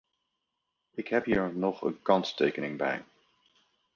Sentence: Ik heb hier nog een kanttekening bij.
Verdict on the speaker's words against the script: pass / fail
pass